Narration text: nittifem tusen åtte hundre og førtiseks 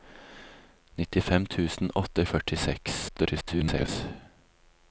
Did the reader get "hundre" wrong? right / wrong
wrong